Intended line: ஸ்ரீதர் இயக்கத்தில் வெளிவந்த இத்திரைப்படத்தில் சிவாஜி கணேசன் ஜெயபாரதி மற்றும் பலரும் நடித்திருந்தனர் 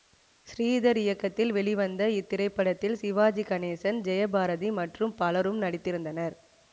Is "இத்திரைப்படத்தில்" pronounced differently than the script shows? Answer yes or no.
no